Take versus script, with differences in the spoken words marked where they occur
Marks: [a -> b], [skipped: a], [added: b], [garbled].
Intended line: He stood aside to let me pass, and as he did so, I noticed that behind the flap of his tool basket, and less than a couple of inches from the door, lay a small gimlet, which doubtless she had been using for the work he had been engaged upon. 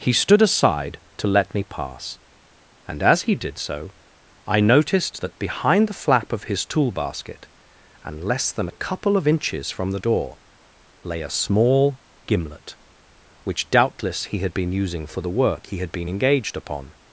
He stood aside to let me pass, and as he did so, I noticed that behind the flap of his tool basket, and less than a couple of inches from the door, lay a small gimlet, which doubtless [she -> he] had been using for the work he had been engaged upon.